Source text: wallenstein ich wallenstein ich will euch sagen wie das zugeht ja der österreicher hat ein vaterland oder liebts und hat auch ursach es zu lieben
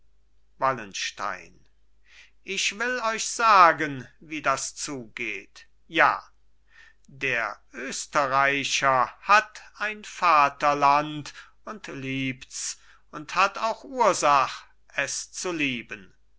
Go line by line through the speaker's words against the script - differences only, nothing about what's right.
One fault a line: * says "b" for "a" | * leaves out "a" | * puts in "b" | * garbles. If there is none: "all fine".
* leaves out "wallenstein ich"
* says "und" for "oder"